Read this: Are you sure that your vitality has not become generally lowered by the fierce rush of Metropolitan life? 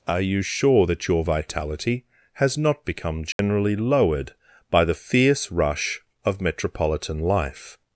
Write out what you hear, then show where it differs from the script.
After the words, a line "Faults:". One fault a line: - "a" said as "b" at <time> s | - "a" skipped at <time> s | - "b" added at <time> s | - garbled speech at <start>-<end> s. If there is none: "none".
Are you sure that your vitality has not become generally lowered by the fierce rush of Metropolitan life?
Faults:
none